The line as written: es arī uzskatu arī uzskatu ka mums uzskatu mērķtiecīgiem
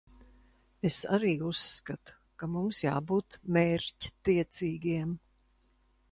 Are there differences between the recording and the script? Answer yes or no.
yes